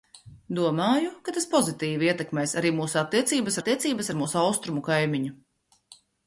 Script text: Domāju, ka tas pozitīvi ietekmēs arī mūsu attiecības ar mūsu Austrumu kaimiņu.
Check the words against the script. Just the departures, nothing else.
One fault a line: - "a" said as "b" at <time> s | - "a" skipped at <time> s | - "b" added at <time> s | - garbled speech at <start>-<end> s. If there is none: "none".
- "attiecības" added at 3.6 s